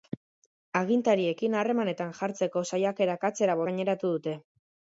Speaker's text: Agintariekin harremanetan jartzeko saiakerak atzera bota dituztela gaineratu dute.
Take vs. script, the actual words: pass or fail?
fail